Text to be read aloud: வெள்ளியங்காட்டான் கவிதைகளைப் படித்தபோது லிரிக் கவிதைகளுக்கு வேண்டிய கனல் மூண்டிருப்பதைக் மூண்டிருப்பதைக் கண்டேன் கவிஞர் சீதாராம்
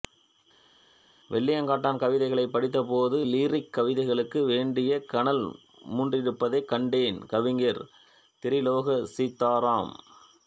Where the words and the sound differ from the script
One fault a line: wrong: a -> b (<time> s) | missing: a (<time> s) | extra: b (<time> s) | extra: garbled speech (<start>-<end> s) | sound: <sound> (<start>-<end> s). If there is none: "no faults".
missing: மூண்டிருப்பதைக் (6.7 s)
extra: திரிலோக (8.4 s)